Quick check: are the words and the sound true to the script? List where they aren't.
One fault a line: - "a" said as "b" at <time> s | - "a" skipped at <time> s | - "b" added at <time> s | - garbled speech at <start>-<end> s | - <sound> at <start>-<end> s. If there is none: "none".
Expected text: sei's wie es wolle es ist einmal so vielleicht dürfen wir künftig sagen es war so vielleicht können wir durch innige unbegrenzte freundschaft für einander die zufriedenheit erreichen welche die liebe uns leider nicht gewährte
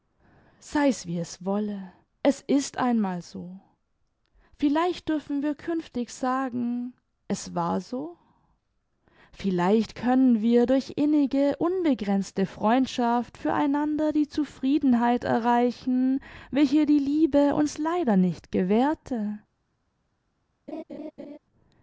- laugh at 20.7-21.4 s